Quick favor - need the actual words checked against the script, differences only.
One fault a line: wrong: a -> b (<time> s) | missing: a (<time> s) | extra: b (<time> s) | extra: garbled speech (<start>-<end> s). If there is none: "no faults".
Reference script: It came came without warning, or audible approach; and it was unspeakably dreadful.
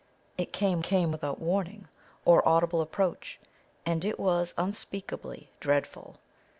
no faults